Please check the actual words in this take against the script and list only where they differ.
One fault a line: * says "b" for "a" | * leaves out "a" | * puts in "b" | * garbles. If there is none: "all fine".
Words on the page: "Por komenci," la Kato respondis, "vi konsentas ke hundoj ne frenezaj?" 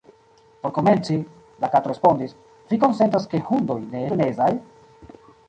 all fine